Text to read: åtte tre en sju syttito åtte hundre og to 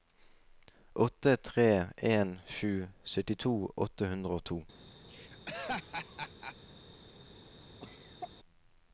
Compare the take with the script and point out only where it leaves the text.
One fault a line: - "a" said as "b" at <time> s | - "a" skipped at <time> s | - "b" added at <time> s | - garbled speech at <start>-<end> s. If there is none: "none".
none